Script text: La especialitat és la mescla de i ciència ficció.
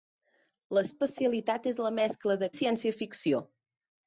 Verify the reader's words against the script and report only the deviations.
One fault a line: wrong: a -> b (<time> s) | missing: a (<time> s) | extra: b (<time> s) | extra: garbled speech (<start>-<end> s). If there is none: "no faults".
no faults